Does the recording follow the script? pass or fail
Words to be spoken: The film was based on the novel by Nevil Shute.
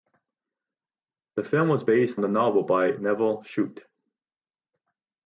fail